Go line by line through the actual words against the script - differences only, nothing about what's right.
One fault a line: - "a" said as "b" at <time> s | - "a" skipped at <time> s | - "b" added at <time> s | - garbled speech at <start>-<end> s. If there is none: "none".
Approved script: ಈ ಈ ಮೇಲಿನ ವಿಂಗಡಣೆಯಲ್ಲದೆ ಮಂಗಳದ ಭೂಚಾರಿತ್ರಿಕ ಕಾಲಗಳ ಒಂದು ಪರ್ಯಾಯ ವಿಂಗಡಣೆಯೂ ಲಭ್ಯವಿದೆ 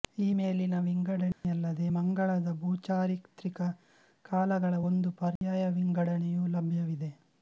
- "ಈ" skipped at 0.3 s